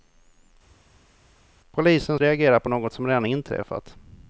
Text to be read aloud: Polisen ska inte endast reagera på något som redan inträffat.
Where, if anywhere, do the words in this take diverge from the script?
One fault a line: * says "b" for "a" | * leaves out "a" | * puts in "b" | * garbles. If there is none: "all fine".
* leaves out "ska inte endast"